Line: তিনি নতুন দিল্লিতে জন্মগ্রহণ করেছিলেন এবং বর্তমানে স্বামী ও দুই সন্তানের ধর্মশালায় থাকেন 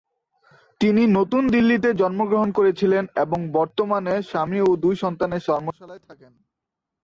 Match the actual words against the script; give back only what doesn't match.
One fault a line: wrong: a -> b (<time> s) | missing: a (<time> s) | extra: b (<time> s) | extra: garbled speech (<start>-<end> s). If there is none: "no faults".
no faults